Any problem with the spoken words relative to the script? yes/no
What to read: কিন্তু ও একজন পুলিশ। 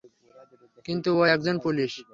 no